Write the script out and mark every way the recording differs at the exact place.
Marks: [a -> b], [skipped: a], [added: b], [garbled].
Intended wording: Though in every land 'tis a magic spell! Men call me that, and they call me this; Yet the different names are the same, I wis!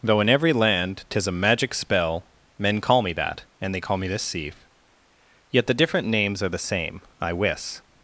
Though in every land 'tis a magic spell! Men call me that, and they call me this; [added: sieve] Yet the different names are the same, I wis!